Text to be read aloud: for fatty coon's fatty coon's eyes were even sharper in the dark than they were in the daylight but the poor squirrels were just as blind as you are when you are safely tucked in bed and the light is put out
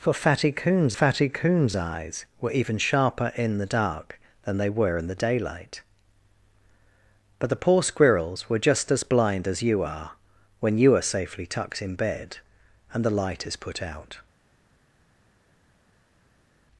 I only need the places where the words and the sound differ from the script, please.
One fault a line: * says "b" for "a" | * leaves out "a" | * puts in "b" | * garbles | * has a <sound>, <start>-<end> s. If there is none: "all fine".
all fine